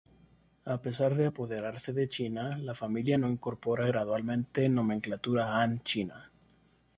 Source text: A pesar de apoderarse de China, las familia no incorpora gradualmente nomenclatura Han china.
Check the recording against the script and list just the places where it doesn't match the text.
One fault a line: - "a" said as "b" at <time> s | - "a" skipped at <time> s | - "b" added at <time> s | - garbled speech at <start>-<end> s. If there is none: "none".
- "las" said as "la" at 2.6 s